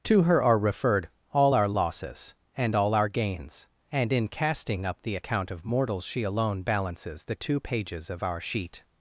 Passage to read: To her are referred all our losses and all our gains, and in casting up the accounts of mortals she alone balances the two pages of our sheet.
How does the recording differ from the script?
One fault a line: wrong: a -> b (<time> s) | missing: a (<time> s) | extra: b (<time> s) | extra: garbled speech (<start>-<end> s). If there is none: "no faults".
wrong: accounts -> account (5.1 s)